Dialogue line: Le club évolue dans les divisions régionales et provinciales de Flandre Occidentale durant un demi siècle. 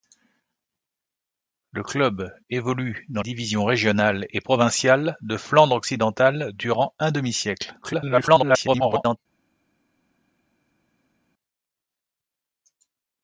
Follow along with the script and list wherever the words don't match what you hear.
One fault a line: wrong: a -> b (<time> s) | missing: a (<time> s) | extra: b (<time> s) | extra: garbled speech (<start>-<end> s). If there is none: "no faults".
missing: les (3.2 s)
extra: garbled speech (7.8-9.2 s)